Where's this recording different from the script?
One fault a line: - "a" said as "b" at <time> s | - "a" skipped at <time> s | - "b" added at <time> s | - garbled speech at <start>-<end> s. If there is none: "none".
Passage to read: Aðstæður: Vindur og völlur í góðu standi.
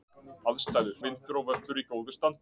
none